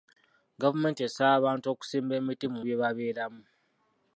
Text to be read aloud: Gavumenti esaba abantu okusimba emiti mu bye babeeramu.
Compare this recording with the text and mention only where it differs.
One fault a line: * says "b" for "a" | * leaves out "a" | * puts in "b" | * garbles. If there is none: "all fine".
all fine